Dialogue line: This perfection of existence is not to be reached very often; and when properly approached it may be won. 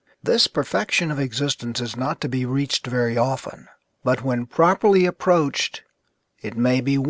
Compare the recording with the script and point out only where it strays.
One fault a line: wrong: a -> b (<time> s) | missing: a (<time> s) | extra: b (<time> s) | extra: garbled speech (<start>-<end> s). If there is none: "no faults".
wrong: and -> but (4.0 s)